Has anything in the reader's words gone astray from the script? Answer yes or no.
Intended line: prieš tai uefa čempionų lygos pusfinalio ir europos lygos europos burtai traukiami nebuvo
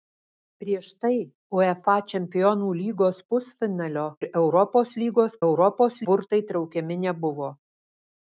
no